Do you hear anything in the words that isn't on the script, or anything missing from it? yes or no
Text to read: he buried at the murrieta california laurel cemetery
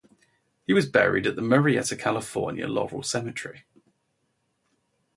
yes